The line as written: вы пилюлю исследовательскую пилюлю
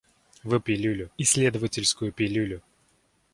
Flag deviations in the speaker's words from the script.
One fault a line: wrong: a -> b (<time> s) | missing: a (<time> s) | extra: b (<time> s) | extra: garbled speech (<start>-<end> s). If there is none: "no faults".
no faults